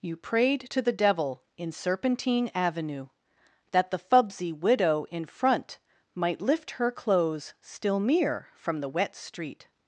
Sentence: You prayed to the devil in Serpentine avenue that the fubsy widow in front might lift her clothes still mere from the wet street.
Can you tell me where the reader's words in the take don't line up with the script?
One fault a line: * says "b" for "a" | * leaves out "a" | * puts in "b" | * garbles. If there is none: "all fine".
all fine